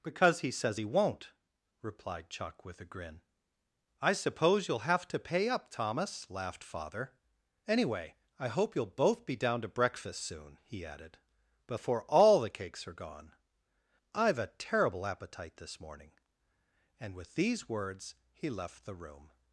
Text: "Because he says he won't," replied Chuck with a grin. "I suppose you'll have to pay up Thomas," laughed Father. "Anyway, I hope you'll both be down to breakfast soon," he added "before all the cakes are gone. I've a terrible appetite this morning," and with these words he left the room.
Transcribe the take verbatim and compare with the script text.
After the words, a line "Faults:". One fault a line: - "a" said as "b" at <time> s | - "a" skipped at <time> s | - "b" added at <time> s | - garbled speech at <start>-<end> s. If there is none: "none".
"Because he says he won't," replied Chuck with a grin. "I suppose you'll have to pay up Thomas," laughed Father. "Anyway, I hope you'll both be down to breakfast soon," he added "before all the cakes are gone. I've a terrible appetite this morning," and with these words he left the room.
Faults:
none